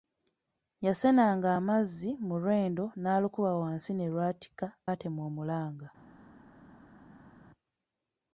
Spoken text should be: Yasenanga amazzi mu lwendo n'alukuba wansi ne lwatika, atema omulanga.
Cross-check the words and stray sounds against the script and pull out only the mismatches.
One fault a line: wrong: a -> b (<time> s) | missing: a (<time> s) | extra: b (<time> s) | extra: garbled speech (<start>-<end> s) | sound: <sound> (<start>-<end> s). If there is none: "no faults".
no faults